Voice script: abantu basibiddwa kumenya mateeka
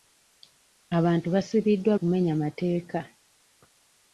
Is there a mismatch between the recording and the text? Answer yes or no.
no